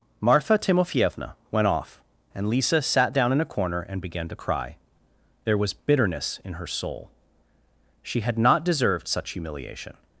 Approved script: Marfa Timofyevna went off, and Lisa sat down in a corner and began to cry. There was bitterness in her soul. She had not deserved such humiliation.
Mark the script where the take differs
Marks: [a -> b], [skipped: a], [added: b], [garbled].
Marfa Timofyevna went off, and Lisa sat down in a corner and began to cry. There was bitterness in her soul. She had not deserved such humiliation.